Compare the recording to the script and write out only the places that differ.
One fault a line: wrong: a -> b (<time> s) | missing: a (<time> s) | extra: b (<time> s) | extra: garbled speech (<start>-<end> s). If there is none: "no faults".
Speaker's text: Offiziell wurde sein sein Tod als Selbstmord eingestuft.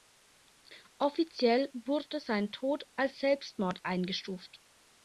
missing: sein (2.5 s)